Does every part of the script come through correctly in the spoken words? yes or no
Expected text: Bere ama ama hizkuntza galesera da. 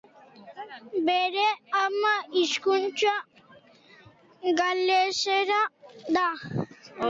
no